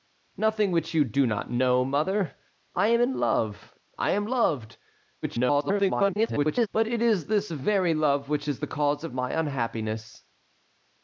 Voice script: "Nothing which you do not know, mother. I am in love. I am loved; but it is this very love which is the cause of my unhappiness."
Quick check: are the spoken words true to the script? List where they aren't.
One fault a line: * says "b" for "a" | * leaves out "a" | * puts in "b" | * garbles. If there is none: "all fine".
* garbles